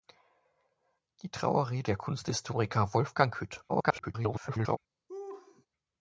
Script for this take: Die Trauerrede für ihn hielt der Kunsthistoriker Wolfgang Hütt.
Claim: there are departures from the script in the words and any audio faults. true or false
true